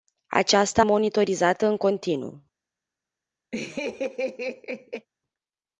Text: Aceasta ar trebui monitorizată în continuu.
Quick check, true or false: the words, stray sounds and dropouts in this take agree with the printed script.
false